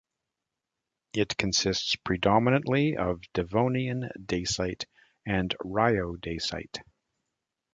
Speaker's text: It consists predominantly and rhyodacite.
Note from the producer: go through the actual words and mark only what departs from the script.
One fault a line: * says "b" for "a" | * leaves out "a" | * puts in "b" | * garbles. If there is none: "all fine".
* puts in "of Devonian dacite"